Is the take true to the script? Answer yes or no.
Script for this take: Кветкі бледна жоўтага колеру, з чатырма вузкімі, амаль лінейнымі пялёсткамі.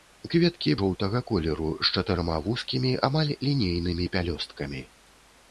no